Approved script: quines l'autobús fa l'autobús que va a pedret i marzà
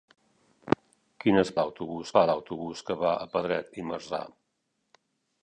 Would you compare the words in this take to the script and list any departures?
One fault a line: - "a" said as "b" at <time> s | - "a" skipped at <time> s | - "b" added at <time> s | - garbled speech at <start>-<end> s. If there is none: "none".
none